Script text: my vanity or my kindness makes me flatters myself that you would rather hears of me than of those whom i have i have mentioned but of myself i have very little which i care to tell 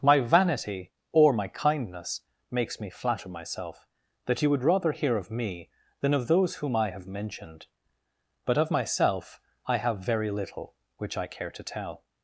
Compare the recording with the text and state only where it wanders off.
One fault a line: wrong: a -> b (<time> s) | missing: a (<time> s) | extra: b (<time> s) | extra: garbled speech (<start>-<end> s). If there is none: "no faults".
wrong: flatters -> flatter (2.9 s)
wrong: hears -> hear (4.9 s)
missing: i have (7.0 s)